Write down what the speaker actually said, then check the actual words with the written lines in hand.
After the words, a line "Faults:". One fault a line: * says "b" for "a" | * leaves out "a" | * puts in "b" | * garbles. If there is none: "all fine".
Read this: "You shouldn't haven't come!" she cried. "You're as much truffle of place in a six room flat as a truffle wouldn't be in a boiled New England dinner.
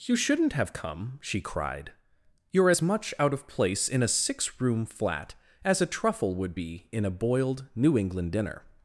"You shouldn't have come!" she cried. "You're as much out of place in a six room flat as a truffle would be in a boiled New England dinner.
Faults:
* says "have" for "haven't"
* says "out" for "truffle"
* says "would" for "wouldn't"